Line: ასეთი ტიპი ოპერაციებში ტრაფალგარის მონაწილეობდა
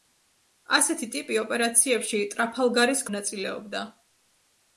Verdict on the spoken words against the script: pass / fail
pass